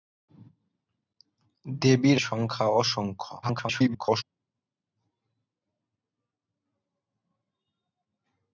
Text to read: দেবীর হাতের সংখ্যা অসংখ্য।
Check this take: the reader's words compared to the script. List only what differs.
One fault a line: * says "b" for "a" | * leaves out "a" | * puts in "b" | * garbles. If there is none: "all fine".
* leaves out "হাতের"
* garbles